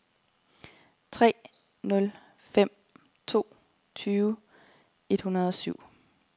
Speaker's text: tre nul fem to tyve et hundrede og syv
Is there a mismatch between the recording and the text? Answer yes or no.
no